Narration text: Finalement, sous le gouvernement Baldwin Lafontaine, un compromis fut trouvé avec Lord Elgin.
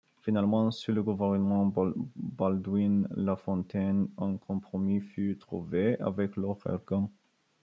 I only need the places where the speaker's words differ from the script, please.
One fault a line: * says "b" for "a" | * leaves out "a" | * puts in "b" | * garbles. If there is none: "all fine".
all fine